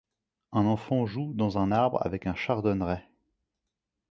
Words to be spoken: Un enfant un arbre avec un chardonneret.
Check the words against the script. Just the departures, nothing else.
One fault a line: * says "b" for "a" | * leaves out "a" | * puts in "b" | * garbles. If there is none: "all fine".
* puts in "joue dans"